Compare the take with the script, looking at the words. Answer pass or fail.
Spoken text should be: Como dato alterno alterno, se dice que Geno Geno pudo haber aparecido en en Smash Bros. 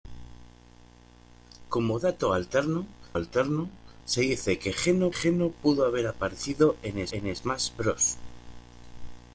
pass